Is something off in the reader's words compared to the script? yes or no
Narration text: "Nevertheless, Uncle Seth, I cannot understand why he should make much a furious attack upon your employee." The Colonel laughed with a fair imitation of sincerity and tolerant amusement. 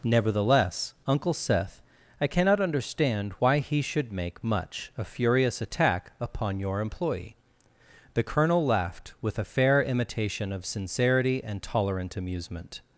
no